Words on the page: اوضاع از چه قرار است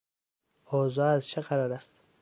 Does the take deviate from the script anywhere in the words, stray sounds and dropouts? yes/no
no